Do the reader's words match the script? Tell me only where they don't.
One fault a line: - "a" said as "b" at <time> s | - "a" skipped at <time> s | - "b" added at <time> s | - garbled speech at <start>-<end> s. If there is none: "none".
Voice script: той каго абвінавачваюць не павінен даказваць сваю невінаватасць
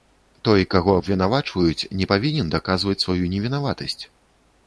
none